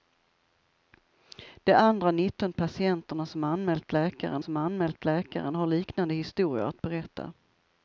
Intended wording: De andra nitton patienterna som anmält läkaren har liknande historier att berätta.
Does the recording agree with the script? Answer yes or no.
no